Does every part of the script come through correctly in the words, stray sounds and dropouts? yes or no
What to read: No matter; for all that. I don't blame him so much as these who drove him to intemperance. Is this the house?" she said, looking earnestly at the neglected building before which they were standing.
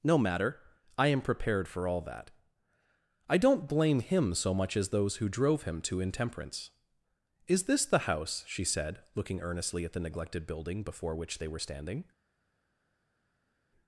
no